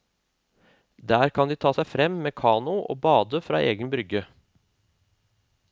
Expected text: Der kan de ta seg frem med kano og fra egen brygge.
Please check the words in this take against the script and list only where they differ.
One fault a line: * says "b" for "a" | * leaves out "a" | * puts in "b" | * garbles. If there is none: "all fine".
* puts in "bade"